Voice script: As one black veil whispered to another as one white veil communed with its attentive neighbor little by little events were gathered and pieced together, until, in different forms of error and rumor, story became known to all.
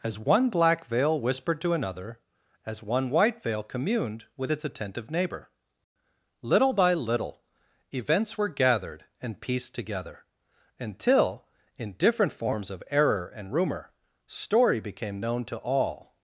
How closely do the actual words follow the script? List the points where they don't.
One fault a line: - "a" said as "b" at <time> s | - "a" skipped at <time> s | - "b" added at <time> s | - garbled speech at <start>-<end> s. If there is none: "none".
none